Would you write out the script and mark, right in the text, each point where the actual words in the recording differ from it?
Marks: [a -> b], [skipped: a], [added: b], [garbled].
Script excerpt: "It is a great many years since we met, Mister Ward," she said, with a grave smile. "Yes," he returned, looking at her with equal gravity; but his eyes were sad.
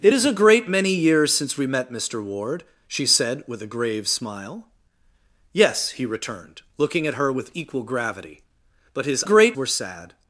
"It is a great many years since we met, Mister Ward," she said, with a grave smile. "Yes," he returned, looking at her with equal gravity; but his [eyes -> great] were sad.